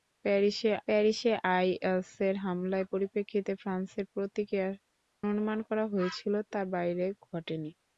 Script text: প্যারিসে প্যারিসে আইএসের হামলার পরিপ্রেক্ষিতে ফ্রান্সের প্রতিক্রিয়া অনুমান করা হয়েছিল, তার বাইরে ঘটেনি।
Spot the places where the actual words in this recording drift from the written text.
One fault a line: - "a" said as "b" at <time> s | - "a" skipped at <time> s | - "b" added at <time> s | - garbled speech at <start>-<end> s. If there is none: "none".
none